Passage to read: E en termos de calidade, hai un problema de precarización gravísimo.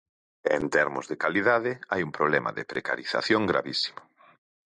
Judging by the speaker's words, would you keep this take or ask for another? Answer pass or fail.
pass